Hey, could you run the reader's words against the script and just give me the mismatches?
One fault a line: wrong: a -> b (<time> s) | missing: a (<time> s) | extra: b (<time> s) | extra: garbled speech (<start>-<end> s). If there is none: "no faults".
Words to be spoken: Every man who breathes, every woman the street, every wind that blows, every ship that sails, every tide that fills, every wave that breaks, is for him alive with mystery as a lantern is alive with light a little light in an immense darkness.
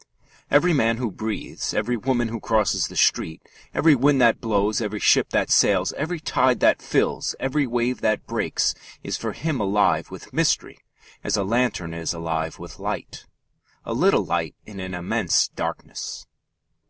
extra: who crosses (2.3 s)